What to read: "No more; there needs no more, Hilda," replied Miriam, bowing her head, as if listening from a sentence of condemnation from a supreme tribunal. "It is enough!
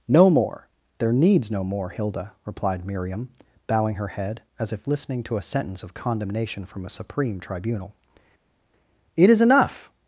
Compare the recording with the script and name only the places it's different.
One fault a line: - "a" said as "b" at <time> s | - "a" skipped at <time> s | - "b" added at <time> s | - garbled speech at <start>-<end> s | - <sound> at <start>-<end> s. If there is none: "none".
- "from" said as "to" at 5.2 s